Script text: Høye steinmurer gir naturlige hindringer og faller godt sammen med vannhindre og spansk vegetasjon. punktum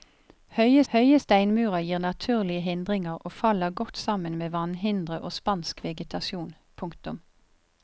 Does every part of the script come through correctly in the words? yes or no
no